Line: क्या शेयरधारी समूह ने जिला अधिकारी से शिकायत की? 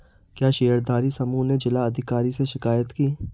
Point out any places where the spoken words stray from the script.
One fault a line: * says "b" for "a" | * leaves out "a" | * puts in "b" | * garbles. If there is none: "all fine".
all fine